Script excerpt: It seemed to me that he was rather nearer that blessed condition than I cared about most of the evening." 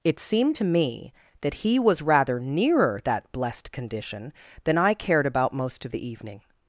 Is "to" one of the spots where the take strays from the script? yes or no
no